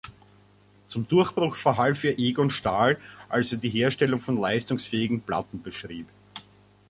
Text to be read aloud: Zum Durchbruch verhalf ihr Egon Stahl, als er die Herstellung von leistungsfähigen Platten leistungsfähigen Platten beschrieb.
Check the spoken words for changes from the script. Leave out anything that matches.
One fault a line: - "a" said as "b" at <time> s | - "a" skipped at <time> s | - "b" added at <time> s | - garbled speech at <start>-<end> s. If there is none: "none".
- "leistungsfähigen Platten" skipped at 5.6 s